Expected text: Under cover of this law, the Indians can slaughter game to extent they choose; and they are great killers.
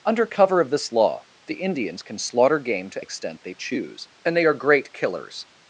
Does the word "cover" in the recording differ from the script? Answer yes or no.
no